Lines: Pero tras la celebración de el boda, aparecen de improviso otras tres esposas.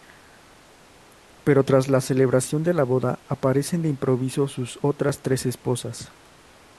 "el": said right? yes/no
no